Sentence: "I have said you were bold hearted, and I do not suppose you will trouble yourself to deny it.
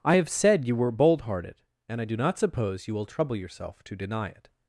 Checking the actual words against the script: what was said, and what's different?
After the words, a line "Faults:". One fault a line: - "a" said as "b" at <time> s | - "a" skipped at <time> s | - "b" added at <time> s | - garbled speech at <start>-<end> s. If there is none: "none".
"I have said you were bold hearted, and I do not suppose you will trouble yourself to deny it.
Faults:
none